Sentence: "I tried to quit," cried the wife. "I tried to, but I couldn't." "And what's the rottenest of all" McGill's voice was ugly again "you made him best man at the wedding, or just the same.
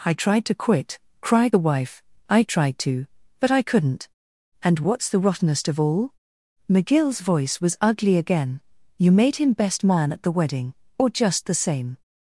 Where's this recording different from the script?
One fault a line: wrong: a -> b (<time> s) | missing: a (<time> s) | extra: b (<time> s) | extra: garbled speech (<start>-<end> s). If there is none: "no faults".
no faults